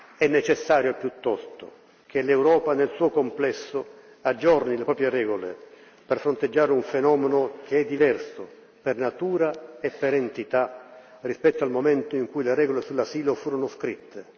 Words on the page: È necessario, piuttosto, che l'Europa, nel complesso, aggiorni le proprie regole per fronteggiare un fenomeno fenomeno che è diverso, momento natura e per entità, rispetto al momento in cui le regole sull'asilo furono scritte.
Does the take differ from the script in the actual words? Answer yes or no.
yes